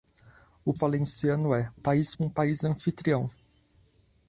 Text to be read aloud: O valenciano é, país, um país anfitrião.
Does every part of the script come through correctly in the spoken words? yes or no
yes